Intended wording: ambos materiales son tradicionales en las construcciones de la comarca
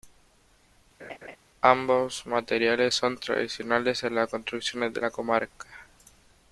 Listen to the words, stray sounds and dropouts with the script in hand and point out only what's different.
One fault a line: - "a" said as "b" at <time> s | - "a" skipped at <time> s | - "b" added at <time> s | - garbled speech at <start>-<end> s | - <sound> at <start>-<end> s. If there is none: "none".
- laugh at 1.0-1.4 s